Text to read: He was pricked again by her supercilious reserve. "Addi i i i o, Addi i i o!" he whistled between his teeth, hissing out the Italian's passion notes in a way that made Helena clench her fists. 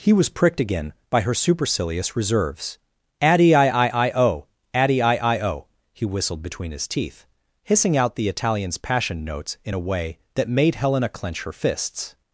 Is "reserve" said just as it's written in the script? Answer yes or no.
no